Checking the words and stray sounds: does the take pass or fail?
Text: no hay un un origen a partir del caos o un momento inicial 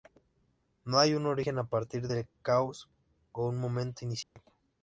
fail